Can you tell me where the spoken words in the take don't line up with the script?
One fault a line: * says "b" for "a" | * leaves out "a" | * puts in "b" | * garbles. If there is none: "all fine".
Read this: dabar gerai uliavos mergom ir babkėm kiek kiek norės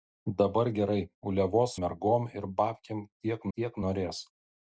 all fine